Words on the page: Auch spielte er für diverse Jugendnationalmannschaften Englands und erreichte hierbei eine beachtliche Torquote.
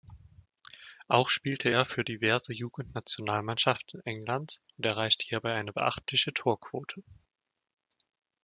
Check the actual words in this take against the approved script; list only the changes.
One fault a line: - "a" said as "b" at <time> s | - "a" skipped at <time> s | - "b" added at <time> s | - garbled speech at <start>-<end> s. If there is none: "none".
none